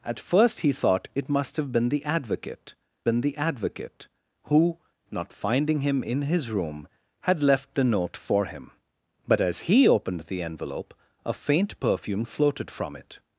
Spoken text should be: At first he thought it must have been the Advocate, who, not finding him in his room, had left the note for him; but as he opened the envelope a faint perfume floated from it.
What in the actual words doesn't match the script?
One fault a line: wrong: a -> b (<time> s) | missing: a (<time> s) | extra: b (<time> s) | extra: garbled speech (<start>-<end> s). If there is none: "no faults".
extra: been the Advocate (3.0 s)